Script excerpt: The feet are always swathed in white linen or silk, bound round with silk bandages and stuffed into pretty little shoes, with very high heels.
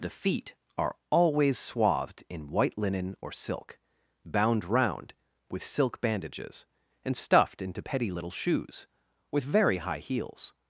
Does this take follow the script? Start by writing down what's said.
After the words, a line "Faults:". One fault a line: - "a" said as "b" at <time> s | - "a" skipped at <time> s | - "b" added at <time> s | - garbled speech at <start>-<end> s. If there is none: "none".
The feet are always swathed in white linen or silk, bound round with silk bandages and stuffed into petty little shoes, with very high heels.
Faults:
- "pretty" said as "petty" at 7.8 s